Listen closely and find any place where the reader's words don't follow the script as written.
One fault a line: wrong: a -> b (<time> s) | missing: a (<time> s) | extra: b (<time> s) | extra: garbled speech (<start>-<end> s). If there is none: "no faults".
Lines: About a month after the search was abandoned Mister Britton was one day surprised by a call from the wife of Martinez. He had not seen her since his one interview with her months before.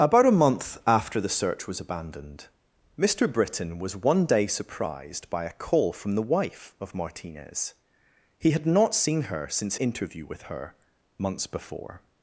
missing: his one (9.8 s)